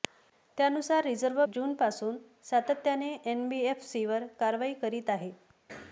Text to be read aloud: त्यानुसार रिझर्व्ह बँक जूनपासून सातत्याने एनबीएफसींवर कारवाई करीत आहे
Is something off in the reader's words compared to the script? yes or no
yes